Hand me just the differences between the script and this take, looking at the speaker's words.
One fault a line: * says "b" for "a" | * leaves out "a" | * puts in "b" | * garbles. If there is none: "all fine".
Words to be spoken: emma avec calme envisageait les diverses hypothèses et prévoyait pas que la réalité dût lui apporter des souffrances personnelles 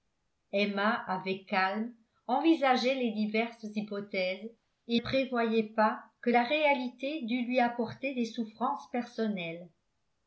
all fine